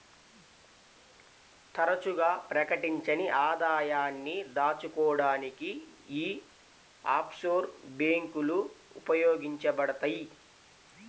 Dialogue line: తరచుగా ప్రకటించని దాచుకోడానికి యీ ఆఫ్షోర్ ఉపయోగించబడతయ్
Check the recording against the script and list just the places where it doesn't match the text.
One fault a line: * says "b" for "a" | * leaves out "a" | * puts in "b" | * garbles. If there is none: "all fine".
* puts in "ఆదాయాన్ని"
* puts in "బ్యేంకులు"